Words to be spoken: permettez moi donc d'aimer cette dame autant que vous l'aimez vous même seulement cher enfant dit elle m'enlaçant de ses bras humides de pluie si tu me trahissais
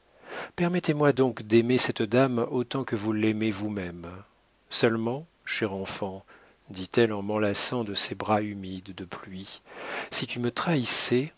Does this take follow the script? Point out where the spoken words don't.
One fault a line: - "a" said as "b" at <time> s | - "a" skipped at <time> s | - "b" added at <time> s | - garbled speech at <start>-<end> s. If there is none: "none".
- "en" added at 7.1 s